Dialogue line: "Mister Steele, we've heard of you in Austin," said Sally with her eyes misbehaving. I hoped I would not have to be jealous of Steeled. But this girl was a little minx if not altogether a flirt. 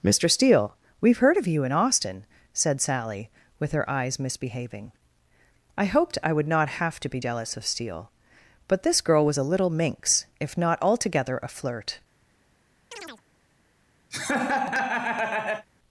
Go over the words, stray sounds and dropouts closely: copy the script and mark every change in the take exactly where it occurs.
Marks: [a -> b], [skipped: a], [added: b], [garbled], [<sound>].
"Mister Steele, we've heard of you in Austin," said Sally with her eyes misbehaving. I hoped I would not have to be jealous of [Steeled. -> Steele] But this girl was a little minx if not altogether a flirt. [chirp] [laugh]